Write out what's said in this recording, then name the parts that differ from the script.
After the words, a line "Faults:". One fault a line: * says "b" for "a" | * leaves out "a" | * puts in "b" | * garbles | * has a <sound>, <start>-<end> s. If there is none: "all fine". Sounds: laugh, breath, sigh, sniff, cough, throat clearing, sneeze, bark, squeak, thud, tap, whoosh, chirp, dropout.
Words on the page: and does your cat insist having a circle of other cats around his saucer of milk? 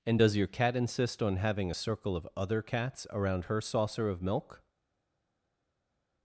and does your cat insist on having a circle of other cats around her saucer of milk?
Faults:
* puts in "on"
* says "her" for "his"